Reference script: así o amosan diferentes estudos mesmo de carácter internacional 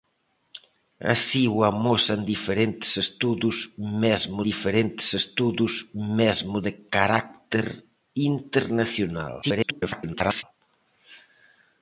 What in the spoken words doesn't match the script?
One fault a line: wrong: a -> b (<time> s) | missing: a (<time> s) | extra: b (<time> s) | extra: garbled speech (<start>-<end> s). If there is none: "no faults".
extra: diferentes estudos mesmo (4.5 s)
extra: garbled speech (9.4-10.4 s)